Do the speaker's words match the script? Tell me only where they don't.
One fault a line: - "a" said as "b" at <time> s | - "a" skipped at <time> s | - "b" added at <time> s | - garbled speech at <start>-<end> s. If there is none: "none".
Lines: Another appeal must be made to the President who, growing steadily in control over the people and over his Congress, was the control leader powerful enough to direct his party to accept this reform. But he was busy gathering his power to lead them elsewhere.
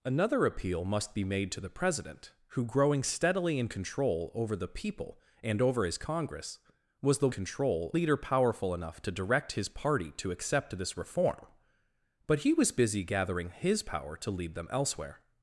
none